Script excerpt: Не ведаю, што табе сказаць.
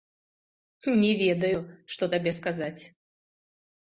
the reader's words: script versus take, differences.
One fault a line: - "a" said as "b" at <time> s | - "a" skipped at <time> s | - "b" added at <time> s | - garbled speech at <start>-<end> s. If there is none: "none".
none